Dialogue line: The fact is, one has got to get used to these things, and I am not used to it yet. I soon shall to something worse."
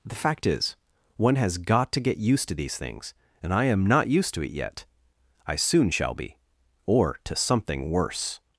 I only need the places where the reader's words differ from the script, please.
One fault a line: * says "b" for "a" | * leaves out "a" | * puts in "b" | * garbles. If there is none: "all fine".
* puts in "be or"